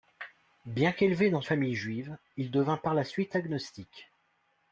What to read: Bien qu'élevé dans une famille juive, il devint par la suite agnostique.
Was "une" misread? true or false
true